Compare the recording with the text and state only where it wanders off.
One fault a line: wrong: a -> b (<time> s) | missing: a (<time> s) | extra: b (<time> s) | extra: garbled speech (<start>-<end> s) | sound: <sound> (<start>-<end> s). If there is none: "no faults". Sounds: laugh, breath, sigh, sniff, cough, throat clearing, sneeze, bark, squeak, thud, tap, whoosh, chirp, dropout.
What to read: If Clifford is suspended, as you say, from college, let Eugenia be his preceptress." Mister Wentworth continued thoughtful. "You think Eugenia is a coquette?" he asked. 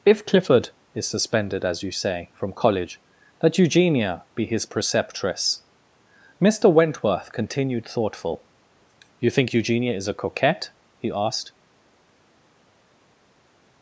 no faults